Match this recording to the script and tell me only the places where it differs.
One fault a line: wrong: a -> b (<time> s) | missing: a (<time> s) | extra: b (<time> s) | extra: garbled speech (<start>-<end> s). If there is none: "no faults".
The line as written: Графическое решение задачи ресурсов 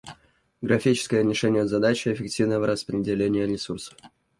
extra: эффективного распределения (2.1 s)